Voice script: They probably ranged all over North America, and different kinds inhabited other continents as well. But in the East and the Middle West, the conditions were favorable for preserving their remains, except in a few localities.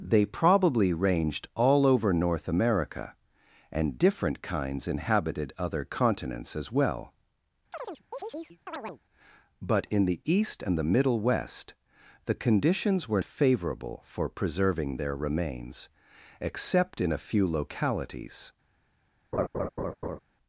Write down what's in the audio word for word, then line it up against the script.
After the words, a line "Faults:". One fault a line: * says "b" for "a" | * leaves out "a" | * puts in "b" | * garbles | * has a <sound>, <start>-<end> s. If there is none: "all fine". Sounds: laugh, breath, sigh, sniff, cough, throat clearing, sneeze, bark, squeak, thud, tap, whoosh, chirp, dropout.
They probably ranged all over North America, and different kinds inhabited other continents as well. But in the East and the Middle West, the conditions were favorable for preserving their remains, except in a few localities.
Faults:
* has a chirp, 7.7-9.0 s
* has a laugh, 19.3-20.2 s